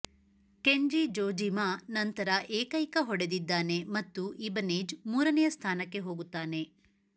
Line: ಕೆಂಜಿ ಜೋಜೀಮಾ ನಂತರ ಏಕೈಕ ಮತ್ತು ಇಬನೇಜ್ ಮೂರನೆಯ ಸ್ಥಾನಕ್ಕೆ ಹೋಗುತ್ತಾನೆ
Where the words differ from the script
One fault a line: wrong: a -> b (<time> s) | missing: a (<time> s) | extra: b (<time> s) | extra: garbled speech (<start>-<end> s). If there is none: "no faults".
extra: ಹೊಡೆದಿದ್ದಾನೆ (3.0 s)